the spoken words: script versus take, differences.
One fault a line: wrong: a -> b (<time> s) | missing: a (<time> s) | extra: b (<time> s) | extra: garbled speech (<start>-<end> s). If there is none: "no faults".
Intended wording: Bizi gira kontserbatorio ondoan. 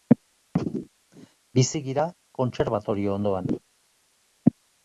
no faults